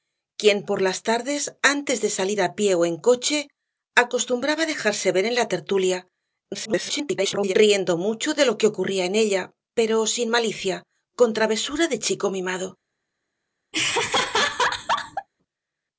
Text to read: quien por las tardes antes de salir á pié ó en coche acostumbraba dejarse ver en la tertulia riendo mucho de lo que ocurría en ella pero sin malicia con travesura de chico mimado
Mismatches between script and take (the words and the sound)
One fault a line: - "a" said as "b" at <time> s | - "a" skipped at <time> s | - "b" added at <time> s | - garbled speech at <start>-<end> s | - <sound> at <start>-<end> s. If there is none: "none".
- garbled speech at 6.5-7.5 s
- laugh at 13.7-15.3 s